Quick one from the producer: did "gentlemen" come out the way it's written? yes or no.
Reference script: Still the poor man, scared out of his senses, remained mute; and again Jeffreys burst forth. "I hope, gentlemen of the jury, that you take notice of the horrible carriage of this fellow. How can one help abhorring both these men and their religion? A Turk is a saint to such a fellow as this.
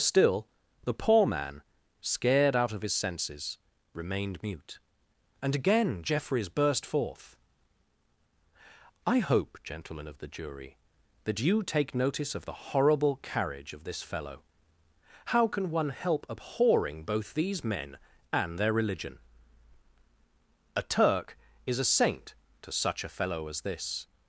yes